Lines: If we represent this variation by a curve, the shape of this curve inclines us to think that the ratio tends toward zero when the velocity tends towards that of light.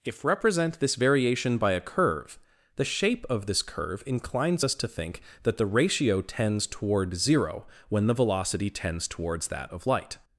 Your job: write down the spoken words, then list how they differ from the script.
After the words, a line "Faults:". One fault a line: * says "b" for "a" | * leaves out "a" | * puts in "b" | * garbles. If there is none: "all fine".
If represent this variation by a curve, the shape of this curve inclines us to think that the ratio tends toward zero when the velocity tends towards that of light.
Faults:
* leaves out "we"